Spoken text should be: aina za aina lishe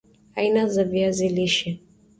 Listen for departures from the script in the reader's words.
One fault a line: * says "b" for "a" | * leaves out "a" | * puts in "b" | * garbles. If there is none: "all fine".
* says "viazi" for "aina"